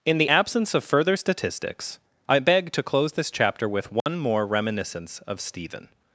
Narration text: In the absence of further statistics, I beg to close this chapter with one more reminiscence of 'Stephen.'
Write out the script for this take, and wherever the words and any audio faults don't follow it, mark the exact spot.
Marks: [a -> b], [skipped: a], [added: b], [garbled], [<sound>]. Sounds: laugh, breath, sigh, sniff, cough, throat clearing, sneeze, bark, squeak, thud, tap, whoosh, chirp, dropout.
In the absence of further statistics, I beg to close this chapter with one [dropout] more reminiscence of 'Stephen.'